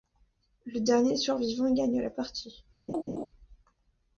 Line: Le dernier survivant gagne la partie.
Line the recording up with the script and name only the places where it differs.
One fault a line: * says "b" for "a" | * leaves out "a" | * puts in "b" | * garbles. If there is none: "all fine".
all fine